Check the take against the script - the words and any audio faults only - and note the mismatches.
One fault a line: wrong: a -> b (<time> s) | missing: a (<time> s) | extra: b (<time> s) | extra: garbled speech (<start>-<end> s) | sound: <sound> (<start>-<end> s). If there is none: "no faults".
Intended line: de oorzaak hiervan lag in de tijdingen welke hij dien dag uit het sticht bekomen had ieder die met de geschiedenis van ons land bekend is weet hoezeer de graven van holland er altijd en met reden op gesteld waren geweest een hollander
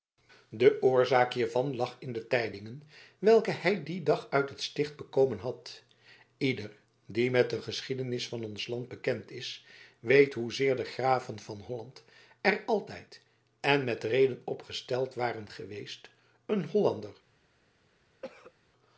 sound: cough (18.2-18.5 s)